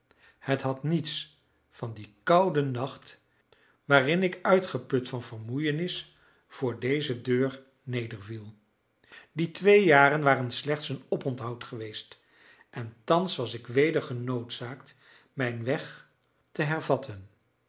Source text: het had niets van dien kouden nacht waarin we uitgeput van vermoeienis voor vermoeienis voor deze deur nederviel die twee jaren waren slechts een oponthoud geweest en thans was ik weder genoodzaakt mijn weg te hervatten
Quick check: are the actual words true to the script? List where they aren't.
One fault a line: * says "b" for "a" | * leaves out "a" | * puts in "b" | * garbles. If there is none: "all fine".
* says "ik" for "we"
* leaves out "vermoeienis voor"